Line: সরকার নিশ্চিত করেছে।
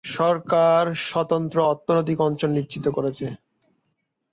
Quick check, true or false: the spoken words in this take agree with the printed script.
false